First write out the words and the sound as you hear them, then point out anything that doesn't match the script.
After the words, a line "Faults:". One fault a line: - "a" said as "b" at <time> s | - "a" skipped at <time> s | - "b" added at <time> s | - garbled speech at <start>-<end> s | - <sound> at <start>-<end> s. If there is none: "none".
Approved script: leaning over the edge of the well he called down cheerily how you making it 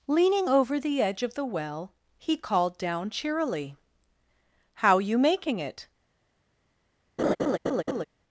leaning over the edge of the well he called down cheerily how you making it
Faults:
- laugh at 7.2-8.0 s